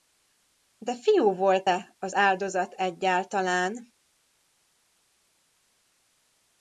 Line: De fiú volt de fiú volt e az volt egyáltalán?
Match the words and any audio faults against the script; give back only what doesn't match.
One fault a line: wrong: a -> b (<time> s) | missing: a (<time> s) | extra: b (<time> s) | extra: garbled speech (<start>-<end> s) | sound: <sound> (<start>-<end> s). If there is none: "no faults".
missing: de fiú volt (1.7 s)
wrong: volt -> áldozat (2.1 s)